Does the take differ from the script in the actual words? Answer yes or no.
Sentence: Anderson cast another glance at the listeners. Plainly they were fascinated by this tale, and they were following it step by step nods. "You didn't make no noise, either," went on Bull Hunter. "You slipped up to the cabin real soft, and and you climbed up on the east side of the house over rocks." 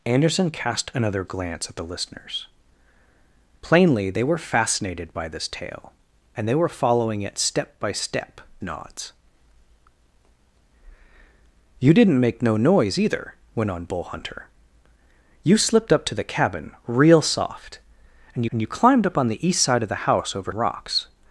no